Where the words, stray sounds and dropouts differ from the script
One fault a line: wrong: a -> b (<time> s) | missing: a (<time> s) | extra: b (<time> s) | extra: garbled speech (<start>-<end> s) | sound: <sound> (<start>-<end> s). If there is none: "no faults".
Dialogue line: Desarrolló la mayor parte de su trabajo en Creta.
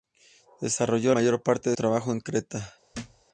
missing: la (1.1 s)
missing: su (1.8 s)
sound: thud (2.9-3.2 s)